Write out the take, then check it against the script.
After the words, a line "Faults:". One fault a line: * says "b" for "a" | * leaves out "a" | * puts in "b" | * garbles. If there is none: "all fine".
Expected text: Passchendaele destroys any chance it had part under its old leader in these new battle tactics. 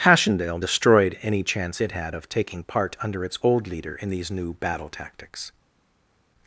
Passchendaele destroyed any chance it had of taking part under its old leader in these new battle tactics.
Faults:
* says "destroyed" for "destroys"
* puts in "of taking"